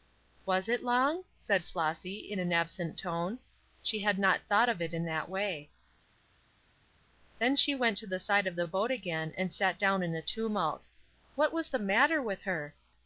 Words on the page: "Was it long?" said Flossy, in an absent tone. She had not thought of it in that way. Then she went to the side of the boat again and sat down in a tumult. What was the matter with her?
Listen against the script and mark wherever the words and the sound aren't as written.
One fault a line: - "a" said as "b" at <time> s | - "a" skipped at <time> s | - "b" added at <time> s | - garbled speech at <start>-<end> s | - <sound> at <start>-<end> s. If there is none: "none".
none